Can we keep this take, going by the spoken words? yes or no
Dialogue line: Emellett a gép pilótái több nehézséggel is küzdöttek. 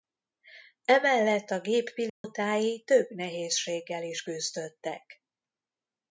yes